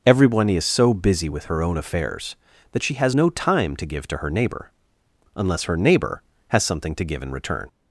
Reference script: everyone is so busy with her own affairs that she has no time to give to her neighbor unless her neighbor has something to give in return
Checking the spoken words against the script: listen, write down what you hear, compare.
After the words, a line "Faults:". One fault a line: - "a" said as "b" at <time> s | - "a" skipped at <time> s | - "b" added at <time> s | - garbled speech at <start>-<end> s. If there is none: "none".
everyone is so busy with her own affairs that she has no time to give to her neighbor unless her neighbor has something to give in return
Faults:
none